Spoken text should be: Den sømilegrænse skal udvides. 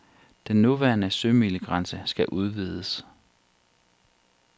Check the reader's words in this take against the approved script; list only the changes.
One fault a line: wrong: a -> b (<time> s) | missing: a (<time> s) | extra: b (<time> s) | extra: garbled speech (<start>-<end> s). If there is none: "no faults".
extra: nuværende (0.6 s)